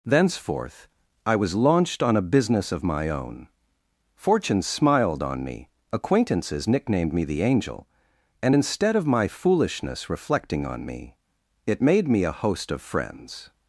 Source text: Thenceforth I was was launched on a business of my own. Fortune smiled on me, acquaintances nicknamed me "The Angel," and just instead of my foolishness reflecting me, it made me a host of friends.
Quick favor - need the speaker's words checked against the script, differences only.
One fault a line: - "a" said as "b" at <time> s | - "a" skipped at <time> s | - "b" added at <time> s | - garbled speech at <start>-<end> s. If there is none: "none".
- "was" skipped at 1.5 s
- "just" skipped at 8.6 s
- "on" added at 10.6 s